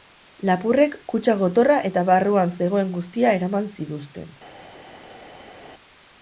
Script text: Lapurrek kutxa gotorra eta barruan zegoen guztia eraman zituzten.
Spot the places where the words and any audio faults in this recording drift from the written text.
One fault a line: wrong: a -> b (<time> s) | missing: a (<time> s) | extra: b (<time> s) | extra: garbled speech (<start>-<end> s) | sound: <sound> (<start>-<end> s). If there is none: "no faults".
no faults